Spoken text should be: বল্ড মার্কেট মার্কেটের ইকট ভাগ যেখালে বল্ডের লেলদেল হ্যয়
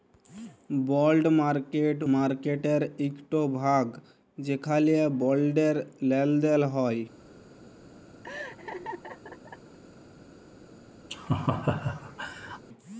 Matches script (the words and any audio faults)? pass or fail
fail